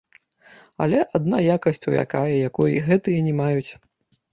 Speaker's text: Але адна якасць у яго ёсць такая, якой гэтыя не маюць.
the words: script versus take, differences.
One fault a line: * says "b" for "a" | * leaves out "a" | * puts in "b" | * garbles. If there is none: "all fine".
* leaves out "яго ёсць"